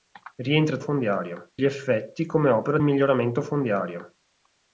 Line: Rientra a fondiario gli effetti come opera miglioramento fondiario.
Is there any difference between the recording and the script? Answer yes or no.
no